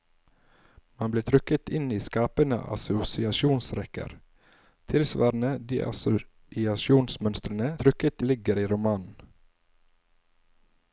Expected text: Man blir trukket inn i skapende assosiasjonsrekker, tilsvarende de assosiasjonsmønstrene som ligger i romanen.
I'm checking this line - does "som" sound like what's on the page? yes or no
no